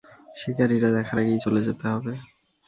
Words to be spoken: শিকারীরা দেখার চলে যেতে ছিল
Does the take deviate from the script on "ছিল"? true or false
true